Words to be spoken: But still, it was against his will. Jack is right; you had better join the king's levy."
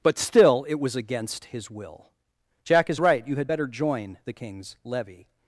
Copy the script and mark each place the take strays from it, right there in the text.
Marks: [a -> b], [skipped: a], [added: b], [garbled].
But still, it was against his will. Jack is right; you had better join the king's levy."